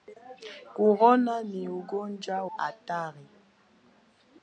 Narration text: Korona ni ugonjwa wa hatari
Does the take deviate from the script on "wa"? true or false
true